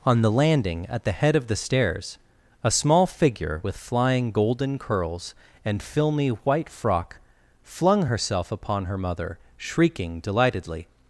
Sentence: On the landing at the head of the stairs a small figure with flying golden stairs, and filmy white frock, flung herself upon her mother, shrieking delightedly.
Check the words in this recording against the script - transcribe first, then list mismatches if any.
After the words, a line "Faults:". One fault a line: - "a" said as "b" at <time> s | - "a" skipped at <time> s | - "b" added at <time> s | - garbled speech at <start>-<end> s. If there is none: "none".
On the landing at the head of the stairs a small figure with flying golden curls, and filmy white frock, flung herself upon her mother, shrieking delightedly.
Faults:
- "stairs" said as "curls" at 4.8 s